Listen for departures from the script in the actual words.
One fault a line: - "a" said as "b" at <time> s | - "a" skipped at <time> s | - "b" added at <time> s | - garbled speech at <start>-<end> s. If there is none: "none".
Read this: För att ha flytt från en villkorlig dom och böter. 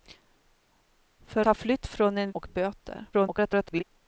- "att" skipped at 1.4 s
- "villkorlig dom" skipped at 2.3 s
- garbled speech at 3.1-3.8 s